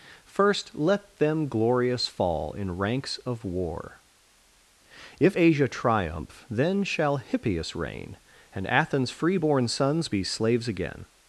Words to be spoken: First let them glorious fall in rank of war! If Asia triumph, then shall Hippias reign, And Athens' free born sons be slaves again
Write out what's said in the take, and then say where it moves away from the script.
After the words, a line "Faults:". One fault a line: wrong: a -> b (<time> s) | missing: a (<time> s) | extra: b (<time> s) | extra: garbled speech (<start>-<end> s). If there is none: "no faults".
First let them glorious fall in ranks of war! If Asia triumph, then shall Hippias reign, And Athens' free born sons be slaves again
Faults:
wrong: rank -> ranks (2.8 s)